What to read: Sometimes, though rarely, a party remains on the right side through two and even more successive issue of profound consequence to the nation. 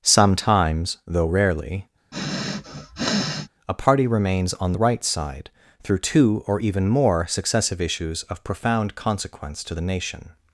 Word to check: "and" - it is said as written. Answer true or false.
false